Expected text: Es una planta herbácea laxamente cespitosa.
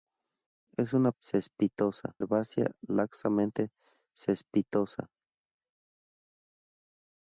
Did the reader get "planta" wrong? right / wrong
wrong